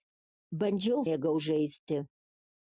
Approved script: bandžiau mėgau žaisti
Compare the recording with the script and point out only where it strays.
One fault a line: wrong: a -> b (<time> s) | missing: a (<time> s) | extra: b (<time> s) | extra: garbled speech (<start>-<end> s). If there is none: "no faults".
no faults